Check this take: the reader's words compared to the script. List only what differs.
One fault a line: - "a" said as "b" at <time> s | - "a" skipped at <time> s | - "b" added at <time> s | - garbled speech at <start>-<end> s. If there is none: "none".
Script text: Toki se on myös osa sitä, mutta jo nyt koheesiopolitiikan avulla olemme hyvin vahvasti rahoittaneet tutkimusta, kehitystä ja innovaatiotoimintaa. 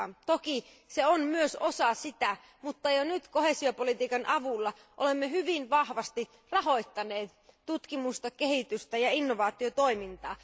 none